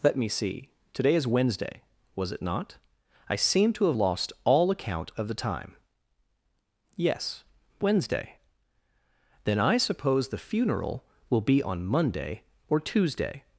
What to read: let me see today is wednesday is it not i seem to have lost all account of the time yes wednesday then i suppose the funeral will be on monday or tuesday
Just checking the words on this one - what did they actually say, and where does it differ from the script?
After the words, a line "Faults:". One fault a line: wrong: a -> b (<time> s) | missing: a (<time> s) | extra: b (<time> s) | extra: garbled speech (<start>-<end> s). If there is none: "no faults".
let me see today is wednesday was it not i seem to have lost all account of the time yes wednesday then i suppose the funeral will be on monday or tuesday
Faults:
wrong: is -> was (2.1 s)